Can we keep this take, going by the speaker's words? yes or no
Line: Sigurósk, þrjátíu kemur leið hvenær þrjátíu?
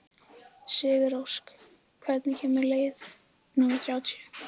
no